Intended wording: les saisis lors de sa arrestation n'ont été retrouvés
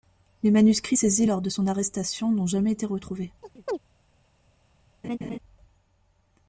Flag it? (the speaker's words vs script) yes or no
yes